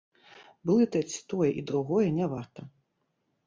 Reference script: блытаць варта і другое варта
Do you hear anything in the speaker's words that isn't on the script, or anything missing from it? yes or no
yes